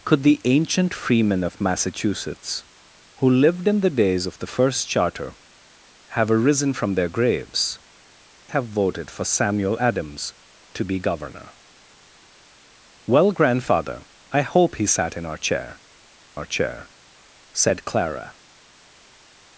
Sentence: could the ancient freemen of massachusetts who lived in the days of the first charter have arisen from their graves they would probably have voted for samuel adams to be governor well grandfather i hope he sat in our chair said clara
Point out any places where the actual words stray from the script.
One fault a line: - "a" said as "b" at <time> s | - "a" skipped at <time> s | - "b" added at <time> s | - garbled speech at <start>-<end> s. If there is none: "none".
- "they would probably" skipped at 7.8 s
- "our chair" added at 16.3 s